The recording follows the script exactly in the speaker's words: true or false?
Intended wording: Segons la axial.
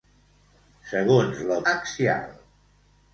true